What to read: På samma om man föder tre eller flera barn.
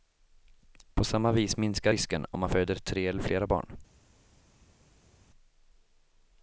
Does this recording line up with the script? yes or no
no